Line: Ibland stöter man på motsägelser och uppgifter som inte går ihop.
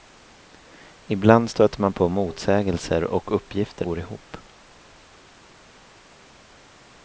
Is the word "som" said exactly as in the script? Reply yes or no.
no